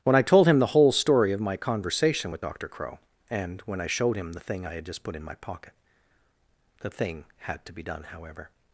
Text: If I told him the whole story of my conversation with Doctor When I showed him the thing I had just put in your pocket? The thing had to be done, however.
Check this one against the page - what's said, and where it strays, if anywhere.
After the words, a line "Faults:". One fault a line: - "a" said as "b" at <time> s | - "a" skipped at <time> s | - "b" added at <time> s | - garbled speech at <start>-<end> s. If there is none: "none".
When I told him the whole story of my conversation with Doctor Crow and when I showed him the thing I had just put in my pocket? The thing had to be done, however.
Faults:
- "If" said as "When" at 0.0 s
- "Crow and" added at 2.7 s
- "your" said as "my" at 5.2 s